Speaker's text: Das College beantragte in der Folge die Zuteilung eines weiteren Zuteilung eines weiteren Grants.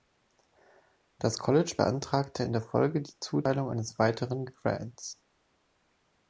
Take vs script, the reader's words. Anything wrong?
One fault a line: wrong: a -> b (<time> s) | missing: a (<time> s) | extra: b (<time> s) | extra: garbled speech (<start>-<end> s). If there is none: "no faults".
missing: Zuteilung eines weiteren (4.4 s)